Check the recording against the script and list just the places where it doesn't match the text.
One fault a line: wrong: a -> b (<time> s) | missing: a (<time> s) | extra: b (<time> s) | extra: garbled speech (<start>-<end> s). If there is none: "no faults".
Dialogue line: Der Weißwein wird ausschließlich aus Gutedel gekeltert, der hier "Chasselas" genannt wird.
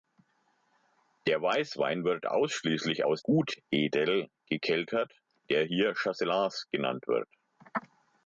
no faults